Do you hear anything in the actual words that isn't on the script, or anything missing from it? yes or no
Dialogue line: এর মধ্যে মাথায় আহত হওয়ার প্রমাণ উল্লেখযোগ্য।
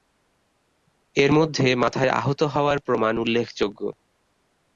no